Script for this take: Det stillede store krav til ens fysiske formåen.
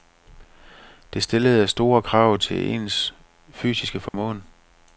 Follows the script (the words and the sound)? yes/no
no